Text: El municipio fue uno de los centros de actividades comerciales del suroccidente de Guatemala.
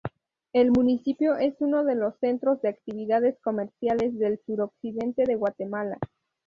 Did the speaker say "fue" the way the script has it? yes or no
no